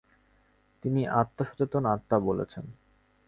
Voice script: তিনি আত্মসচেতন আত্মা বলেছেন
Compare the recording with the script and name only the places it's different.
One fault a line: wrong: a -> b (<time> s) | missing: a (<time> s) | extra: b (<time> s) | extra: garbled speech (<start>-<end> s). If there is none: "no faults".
no faults